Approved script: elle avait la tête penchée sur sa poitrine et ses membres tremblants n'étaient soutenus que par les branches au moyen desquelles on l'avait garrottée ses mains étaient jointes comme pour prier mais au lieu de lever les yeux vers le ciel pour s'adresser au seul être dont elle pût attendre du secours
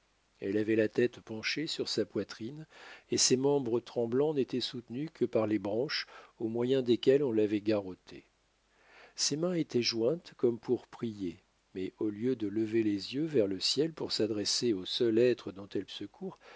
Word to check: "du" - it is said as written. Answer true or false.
false